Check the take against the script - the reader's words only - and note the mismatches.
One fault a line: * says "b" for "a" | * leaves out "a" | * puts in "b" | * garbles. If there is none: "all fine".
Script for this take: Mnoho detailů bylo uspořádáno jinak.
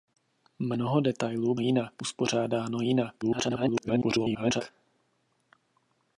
* says "jinak" for "bylo"
* garbles